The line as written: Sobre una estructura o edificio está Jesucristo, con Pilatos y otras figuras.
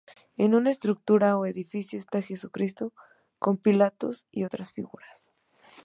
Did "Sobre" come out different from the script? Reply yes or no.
yes